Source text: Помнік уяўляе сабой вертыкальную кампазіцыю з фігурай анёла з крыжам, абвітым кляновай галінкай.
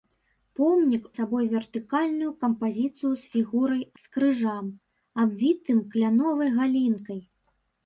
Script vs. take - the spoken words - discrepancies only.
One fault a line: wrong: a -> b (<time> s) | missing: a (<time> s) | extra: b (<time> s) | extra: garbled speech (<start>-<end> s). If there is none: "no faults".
missing: уяўляе (1.0 s)
missing: анёла (3.8 s)